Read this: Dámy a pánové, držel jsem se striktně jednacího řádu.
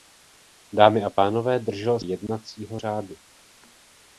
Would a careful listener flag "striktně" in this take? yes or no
yes